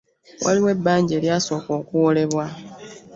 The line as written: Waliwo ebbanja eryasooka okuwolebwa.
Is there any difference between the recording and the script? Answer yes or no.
no